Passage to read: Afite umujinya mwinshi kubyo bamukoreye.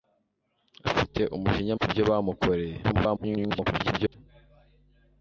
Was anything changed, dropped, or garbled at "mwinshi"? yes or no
yes